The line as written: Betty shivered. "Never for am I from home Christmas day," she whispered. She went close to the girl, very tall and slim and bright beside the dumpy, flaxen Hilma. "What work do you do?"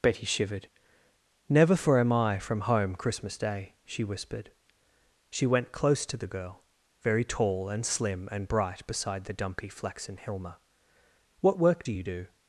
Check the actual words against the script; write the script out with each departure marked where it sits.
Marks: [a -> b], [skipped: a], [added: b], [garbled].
Betty shivered. "Never for am I from home Christmas day," she whispered. She went close to the girl, very tall and slim and bright beside the dumpy, flaxen Hilma. "What work do you do?"